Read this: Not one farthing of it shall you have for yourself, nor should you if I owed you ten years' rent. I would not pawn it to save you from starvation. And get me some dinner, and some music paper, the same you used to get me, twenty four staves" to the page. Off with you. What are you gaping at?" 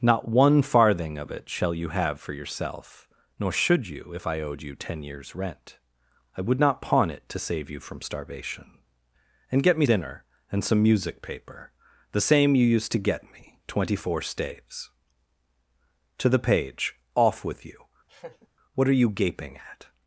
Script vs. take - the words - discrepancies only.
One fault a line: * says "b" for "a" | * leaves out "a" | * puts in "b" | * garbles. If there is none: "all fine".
* leaves out "some"